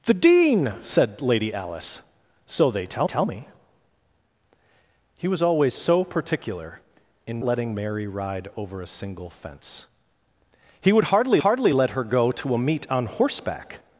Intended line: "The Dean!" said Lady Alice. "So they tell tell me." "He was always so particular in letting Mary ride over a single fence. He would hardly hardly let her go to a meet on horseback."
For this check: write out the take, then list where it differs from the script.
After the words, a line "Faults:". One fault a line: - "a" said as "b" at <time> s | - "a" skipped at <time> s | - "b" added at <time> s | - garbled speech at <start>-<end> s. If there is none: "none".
"The Dean!" said Lady Alice. "So they tell tell me." "He was always so particular in letting Mary ride over a single fence. He would hardly hardly let her go to a meet on horseback."
Faults:
none